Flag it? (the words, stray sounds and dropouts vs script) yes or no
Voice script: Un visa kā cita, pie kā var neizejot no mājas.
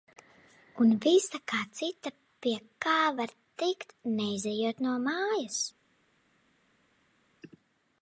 yes